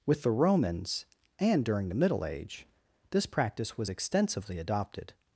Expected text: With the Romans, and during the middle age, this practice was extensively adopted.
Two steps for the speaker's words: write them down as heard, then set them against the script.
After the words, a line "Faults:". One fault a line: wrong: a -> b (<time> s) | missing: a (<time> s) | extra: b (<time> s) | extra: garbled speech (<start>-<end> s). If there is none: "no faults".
With the Romans, and during the middle age, this practice was extensively adopted.
Faults:
no faults